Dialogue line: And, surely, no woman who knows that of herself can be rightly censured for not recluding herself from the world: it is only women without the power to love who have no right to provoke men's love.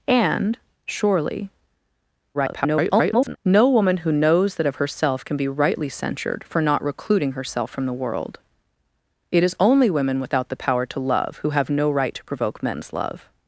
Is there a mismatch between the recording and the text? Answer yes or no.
yes